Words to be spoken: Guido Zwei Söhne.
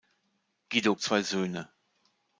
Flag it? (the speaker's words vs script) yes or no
no